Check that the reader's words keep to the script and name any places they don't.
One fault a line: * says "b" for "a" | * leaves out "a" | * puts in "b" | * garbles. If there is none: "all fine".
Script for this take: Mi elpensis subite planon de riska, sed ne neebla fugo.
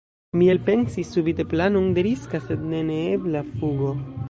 all fine